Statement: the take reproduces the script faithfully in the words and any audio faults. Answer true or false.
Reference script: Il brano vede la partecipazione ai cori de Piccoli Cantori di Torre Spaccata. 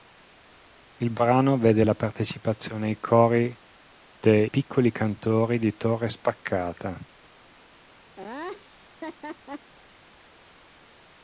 false